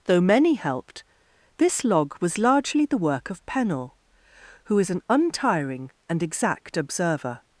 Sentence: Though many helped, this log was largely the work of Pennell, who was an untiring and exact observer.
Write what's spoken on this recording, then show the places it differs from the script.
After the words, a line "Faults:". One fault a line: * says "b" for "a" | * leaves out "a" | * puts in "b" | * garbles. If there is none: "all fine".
Though many helped, this log was largely the work of Pennell, who is an untiring and exact observer.
Faults:
* says "is" for "was"